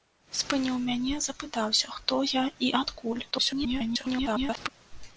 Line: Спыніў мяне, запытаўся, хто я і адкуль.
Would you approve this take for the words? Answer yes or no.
no